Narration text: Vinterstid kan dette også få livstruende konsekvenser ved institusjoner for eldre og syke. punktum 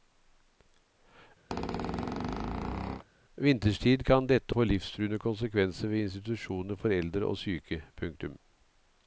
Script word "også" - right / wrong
wrong